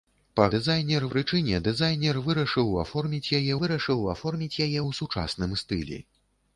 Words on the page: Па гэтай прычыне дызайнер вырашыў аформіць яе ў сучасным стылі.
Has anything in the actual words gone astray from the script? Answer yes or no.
yes